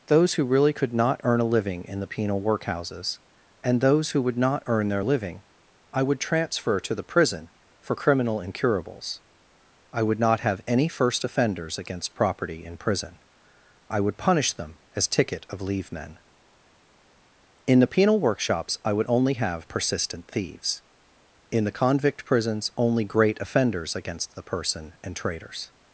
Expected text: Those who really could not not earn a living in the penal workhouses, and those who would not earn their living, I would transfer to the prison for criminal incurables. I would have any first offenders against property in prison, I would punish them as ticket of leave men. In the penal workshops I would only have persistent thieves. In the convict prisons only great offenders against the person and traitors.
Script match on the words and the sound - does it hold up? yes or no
no